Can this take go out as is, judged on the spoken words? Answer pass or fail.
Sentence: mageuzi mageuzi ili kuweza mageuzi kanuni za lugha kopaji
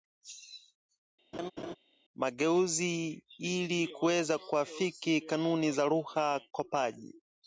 fail